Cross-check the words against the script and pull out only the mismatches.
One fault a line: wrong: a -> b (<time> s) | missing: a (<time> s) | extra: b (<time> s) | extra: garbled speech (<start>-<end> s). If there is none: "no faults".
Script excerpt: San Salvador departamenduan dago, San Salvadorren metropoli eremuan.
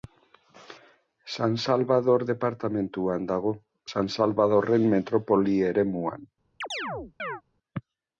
no faults